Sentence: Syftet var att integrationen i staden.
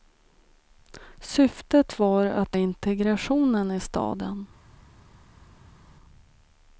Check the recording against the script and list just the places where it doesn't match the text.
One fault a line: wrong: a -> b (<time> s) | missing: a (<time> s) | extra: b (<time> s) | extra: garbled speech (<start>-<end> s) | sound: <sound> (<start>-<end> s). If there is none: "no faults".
no faults